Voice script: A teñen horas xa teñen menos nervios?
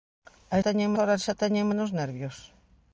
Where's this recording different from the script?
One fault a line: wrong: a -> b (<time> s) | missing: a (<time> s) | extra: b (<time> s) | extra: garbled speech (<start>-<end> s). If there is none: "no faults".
no faults